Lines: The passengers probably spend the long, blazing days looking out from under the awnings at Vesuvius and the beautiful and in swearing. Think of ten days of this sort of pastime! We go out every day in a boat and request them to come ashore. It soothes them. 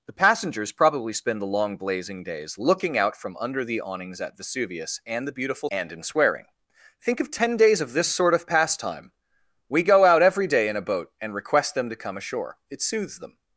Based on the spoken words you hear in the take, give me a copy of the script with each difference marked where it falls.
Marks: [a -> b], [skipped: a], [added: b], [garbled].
The passengers probably spend the long, blazing days looking out from under the awnings at Vesuvius and the beautiful and in swearing. Think of ten days of this sort of pastime! We go out every day in a boat and request them to come ashore. It soothes them.